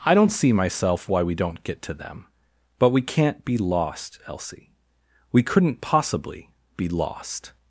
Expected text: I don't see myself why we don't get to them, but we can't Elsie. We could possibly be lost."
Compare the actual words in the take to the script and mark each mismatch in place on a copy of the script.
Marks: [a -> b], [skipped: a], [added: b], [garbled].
I don't see myself why we don't get to them, but we can't [added: be lost] Elsie. We [could -> couldn't] possibly be lost."